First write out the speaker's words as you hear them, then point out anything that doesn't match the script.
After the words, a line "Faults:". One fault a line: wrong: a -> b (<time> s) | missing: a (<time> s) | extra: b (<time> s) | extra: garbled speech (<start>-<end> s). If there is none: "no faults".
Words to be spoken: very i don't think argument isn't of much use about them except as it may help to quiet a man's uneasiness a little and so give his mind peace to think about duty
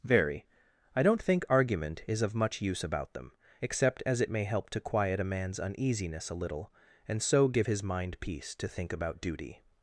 very i don't think argument is of much use about them except as it may help to quiet a man's uneasiness a little and so give his mind peace to think about duty
Faults:
wrong: isn't -> is (2.1 s)